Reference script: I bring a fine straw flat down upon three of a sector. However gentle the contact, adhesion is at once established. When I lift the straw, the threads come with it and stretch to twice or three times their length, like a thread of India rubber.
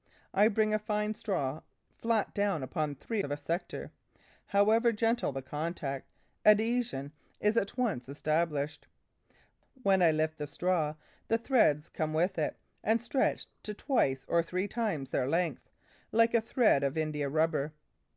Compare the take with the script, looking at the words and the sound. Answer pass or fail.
pass